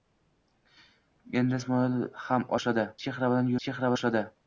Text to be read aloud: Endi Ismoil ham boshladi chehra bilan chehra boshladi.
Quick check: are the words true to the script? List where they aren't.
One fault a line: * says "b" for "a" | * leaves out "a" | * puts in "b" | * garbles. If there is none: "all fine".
all fine